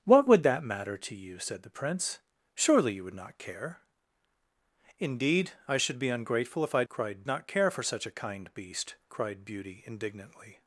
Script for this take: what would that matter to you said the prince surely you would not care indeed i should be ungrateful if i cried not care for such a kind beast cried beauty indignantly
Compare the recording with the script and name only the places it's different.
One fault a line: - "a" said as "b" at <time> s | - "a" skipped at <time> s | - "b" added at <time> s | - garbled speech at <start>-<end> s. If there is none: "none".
none